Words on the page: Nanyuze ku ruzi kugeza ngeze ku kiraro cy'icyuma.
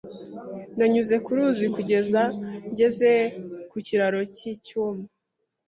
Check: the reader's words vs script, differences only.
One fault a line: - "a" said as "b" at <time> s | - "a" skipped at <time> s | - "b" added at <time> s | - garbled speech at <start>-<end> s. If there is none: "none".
none